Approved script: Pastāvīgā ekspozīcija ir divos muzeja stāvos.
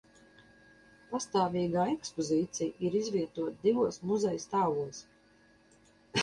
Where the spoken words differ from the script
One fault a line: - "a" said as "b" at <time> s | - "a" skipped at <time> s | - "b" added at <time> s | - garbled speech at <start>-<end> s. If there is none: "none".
- "izvietota" added at 3.0 s